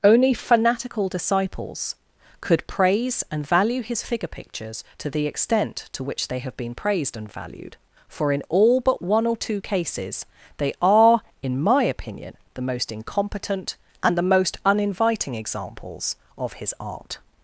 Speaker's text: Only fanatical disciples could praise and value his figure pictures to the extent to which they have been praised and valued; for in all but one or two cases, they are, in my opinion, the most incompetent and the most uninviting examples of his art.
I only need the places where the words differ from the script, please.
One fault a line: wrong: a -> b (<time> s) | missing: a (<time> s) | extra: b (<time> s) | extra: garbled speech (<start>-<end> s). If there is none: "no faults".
no faults